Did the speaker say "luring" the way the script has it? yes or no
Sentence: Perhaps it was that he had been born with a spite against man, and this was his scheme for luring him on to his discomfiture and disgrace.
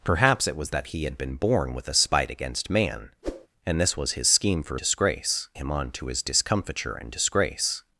no